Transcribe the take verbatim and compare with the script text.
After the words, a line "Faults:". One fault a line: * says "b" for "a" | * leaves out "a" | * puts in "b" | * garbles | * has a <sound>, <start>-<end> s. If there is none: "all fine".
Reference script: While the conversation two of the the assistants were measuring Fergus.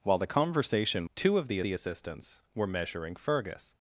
While the conversation two of the the assistants were measuring Fergus.
Faults:
all fine